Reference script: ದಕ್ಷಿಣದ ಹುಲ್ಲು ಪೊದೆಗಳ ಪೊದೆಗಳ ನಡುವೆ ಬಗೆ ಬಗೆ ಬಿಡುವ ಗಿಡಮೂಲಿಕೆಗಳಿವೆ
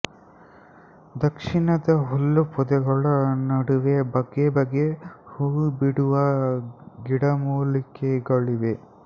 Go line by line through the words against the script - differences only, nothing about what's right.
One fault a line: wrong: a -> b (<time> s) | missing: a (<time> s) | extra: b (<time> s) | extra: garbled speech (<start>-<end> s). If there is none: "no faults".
missing: ಪೊದೆಗಳ (3.0 s)
extra: ಹೂ (5.3 s)